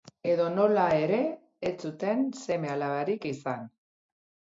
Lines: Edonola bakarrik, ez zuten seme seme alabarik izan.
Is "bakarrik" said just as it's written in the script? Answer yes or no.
no